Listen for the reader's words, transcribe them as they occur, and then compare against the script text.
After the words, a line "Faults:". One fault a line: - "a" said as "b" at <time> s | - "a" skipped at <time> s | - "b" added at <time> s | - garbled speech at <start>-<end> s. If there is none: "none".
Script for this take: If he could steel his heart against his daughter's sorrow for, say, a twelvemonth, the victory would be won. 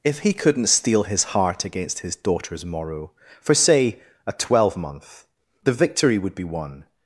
If he couldn't steel his heart against his daughter's morrow for, say, a twelvemonth, the victory would be won.
Faults:
- "could" said as "couldn't" at 0.3 s
- "sorrow" said as "morrow" at 2.6 s